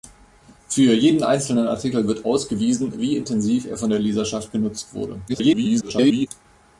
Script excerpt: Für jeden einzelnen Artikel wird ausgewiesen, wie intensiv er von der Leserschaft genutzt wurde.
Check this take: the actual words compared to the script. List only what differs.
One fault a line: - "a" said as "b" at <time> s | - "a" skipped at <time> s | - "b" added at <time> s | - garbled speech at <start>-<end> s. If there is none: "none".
- garbled speech at 5.3-6.3 s